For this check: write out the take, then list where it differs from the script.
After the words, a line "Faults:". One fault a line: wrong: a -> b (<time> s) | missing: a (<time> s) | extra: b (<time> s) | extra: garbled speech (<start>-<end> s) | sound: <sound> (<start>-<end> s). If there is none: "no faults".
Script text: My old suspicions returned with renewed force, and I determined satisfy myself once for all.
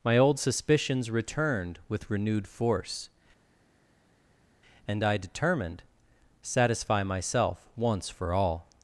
My old suspicions returned with renewed force, and I determined satisfy myself once for all.
Faults:
no faults